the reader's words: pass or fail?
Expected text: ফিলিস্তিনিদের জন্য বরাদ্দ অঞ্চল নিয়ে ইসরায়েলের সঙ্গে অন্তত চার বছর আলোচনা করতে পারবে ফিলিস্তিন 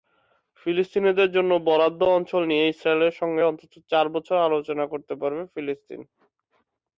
pass